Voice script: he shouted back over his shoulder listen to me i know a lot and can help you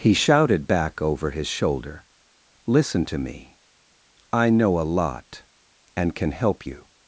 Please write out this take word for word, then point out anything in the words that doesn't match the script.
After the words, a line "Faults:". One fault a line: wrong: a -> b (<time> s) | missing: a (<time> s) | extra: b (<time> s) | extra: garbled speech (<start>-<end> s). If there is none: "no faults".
he shouted back over his shoulder listen to me i know a lot and can help you
Faults:
no faults